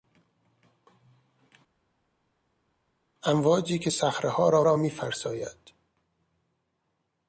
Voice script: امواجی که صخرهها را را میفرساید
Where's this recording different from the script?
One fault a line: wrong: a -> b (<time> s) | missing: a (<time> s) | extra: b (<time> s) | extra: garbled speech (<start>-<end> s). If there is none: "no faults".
no faults